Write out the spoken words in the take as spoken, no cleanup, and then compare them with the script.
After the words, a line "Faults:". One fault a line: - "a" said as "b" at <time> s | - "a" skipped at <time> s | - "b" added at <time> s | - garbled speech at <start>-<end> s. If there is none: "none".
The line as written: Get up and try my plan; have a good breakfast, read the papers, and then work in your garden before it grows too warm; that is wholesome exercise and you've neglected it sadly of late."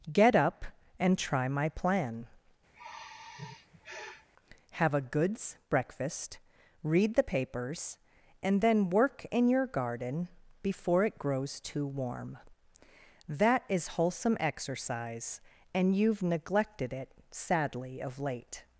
Get up and try my plan; have a goods breakfast, read the papers, and then work in your garden before it grows too warm; that is wholesome exercise and you've neglected it sadly of late."
Faults:
- "good" said as "goods" at 5.0 s